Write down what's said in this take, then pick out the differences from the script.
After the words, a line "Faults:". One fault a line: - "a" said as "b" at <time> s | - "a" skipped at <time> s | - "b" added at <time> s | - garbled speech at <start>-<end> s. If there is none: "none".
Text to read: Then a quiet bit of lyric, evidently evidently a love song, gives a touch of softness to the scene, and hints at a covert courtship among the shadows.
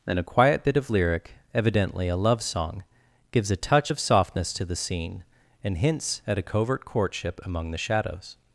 Then a quiet bit of lyric, evidently a love song, gives a touch of softness to the scene, and hints at a covert courtship among the shadows.
Faults:
- "evidently" skipped at 2.1 s